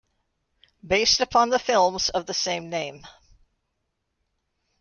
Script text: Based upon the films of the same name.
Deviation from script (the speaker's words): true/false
false